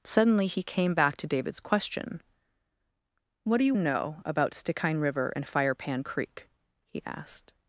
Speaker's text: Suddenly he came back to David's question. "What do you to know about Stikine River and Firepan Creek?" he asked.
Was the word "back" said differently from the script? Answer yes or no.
no